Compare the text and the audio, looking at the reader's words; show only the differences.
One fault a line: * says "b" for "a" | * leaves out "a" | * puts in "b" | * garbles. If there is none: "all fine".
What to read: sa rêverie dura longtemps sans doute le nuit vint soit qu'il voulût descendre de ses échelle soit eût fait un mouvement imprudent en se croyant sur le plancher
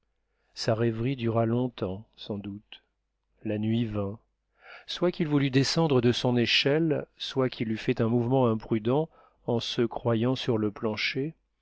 * says "la" for "le"
* says "son" for "ses"
* puts in "qu'il"